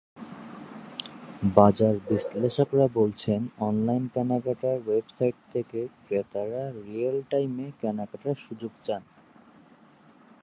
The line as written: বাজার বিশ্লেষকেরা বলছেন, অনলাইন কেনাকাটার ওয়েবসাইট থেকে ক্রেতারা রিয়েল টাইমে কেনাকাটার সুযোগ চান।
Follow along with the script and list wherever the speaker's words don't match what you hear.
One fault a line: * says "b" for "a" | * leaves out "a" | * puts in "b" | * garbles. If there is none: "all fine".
all fine